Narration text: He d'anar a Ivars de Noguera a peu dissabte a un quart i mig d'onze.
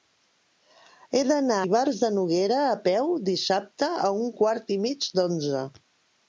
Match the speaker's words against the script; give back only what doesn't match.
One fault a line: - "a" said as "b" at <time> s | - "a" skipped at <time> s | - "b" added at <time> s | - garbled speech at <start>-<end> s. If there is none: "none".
- "a" skipped at 1.6 s